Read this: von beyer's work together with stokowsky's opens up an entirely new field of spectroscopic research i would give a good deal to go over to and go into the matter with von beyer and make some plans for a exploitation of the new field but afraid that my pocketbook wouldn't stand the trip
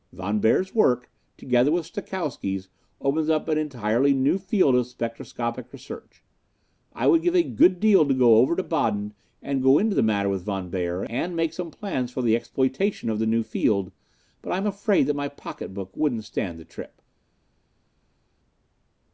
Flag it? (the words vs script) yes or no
yes